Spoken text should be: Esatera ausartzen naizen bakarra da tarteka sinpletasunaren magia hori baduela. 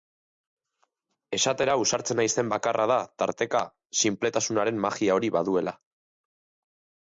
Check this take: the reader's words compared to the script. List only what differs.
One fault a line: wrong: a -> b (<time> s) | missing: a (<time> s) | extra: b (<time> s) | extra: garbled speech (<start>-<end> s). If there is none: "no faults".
no faults